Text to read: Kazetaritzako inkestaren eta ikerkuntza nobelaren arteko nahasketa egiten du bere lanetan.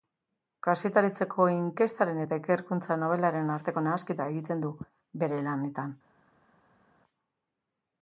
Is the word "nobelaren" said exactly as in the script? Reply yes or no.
yes